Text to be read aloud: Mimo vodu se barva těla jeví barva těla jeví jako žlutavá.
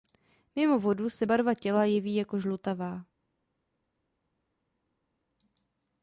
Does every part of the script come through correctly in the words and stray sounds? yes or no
no